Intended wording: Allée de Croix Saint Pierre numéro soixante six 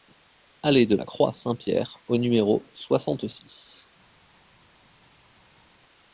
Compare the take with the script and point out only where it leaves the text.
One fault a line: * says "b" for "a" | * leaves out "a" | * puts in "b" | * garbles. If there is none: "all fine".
* puts in "la"
* puts in "au"